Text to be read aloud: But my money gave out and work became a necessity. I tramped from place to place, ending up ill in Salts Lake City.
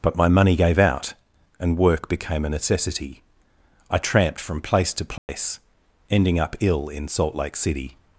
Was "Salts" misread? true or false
true